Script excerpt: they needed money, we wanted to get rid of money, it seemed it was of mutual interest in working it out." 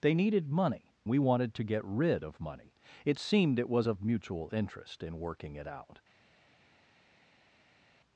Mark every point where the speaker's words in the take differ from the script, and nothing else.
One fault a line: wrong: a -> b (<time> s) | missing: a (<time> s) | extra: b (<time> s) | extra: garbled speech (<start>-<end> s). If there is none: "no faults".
no faults